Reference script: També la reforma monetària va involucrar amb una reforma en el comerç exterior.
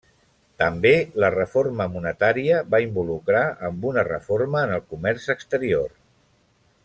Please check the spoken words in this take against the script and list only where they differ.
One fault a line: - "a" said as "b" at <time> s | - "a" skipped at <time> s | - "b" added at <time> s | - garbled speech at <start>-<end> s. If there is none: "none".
none